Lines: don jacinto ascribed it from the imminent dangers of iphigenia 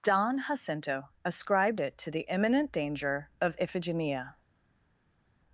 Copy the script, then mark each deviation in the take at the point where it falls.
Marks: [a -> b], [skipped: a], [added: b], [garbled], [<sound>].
don jacinto ascribed it [from -> to] the imminent [dangers -> danger] of iphigenia